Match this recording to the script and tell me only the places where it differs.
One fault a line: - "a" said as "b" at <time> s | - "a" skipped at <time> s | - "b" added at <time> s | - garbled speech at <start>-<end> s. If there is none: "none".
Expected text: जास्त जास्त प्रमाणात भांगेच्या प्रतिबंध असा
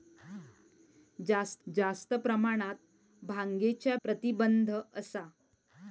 none